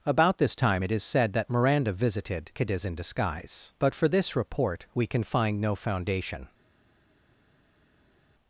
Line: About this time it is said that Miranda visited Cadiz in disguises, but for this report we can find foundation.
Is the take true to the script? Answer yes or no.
no